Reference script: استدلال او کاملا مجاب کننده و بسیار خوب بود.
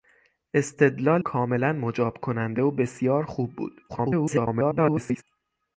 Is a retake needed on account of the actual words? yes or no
yes